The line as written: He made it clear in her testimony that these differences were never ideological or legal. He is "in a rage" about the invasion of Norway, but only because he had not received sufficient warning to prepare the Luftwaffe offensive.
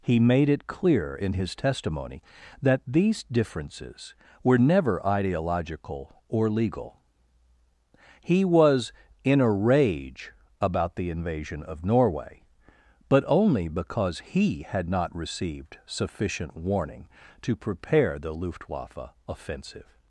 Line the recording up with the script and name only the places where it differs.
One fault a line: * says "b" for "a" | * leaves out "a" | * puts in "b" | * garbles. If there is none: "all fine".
* says "his" for "her"
* says "was" for "is"